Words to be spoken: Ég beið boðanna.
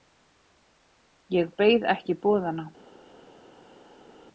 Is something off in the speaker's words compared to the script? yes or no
yes